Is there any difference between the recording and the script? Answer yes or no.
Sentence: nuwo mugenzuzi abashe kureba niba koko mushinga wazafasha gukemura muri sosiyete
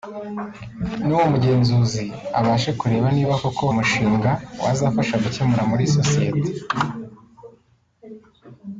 no